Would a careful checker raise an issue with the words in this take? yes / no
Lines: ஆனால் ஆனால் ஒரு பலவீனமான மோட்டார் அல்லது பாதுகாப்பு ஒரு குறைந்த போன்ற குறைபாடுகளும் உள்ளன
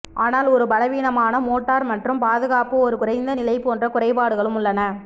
yes